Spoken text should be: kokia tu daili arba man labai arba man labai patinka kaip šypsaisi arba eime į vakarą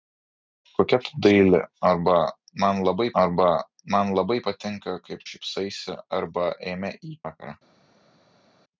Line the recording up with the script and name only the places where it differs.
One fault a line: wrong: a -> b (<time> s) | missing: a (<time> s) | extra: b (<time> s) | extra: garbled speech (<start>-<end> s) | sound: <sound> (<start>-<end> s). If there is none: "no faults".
no faults